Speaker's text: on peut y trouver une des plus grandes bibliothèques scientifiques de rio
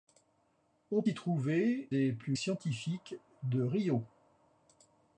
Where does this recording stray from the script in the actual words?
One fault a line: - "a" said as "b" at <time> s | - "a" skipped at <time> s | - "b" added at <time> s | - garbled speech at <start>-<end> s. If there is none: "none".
- "peut" skipped at 1.0 s
- "une" skipped at 1.9 s
- "grandes bibliothèques" skipped at 2.4 s